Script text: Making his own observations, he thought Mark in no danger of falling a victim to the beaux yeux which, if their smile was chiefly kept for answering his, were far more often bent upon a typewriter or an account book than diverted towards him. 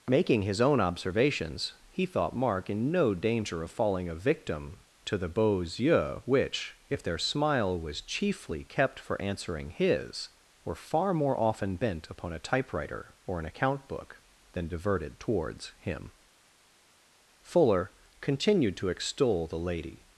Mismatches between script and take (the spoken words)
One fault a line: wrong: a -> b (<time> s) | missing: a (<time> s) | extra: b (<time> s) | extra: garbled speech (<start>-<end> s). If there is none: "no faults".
extra: Fuller continued to extol the Lady (17.4 s)